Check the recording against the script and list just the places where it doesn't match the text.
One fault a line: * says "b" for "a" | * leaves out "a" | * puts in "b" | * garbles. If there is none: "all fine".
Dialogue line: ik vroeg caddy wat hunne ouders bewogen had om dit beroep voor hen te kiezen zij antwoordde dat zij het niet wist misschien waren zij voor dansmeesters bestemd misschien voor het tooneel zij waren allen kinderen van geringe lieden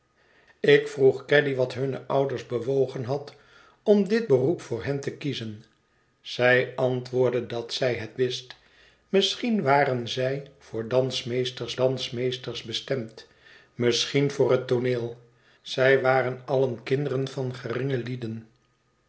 * leaves out "niet"
* puts in "dansmeesters"